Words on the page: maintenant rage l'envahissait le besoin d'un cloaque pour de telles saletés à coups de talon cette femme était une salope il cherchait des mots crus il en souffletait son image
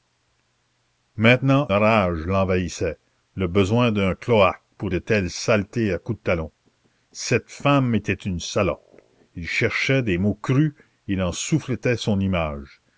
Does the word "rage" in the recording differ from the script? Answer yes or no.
no